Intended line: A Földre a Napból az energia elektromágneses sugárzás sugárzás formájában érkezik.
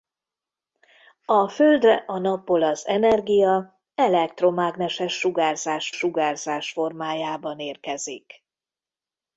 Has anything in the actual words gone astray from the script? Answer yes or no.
no